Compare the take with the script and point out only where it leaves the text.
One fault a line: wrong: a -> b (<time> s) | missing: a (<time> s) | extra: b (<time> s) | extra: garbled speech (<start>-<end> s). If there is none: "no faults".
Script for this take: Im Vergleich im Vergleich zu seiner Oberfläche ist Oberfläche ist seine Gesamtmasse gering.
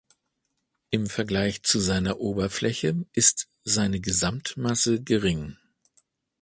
missing: im Vergleich (1.6 s)
missing: Oberfläche ist (3.5 s)